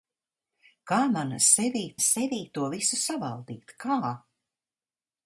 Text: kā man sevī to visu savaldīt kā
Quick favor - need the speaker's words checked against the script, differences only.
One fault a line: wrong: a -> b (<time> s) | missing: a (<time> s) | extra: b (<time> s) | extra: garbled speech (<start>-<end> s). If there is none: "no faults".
extra: sevī (2.1 s)